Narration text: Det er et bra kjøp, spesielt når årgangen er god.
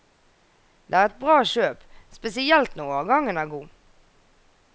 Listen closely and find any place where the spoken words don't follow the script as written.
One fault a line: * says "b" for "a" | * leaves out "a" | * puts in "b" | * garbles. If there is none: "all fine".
all fine